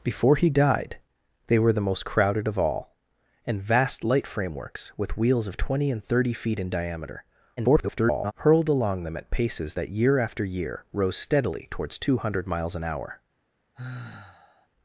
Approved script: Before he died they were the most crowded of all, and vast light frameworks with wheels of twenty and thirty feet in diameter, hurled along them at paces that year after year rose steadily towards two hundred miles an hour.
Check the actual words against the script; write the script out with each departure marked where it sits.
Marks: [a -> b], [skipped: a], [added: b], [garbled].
Before he died they were the most crowded of all, and vast light frameworks with wheels of twenty and thirty feet in diameter, [garbled] hurled along them at paces that year after year rose steadily towards two hundred miles an hour.